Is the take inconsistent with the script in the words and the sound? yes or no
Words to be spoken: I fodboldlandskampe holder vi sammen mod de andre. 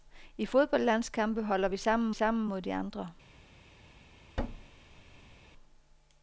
yes